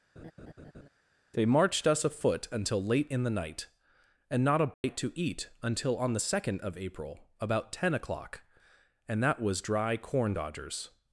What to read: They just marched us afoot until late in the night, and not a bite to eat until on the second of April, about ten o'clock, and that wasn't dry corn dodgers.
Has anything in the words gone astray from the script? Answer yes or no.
yes